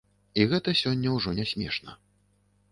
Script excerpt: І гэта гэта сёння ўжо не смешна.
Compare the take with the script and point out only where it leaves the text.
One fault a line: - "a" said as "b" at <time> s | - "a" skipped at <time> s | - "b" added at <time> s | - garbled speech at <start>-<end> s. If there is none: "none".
- "гэта" skipped at 0.7 s